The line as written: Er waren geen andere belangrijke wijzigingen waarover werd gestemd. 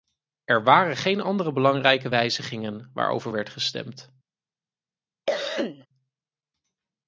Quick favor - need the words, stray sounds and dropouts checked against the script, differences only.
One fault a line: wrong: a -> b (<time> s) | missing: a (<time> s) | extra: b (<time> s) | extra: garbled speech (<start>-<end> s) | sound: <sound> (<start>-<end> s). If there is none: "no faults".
sound: cough (5.3-5.9 s)